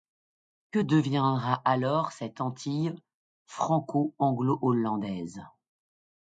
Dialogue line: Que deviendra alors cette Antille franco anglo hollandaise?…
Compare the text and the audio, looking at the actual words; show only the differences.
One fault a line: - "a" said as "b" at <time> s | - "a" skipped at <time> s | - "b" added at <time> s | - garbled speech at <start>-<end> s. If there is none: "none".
none